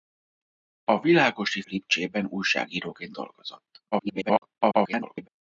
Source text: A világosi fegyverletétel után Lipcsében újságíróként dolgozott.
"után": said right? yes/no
no